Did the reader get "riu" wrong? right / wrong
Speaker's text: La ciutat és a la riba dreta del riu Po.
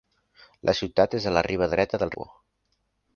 wrong